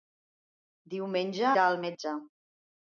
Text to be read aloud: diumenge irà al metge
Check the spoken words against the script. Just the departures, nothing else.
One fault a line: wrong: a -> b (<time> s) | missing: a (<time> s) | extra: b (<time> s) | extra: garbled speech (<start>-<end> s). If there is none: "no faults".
no faults